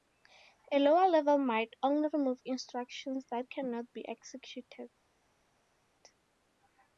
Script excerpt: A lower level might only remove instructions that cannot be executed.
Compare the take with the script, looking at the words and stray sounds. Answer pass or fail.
pass